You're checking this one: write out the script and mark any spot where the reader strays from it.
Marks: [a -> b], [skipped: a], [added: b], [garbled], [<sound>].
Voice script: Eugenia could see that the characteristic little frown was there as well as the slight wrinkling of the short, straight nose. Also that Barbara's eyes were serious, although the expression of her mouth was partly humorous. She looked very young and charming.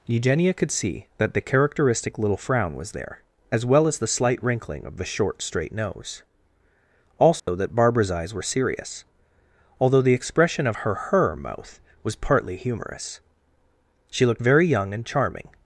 Eugenia could see that the characteristic little frown was there as well as the slight wrinkling of the short, straight nose. Also [dropout] that Barbara's eyes were serious, although the expression of her [added: her] mouth was partly humorous. She looked very young and charming.